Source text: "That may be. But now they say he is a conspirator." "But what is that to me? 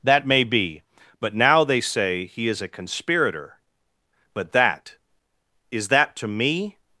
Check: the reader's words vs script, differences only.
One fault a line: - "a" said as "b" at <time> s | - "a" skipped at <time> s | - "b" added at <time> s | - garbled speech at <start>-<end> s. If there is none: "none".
- "what" said as "that" at 4.5 s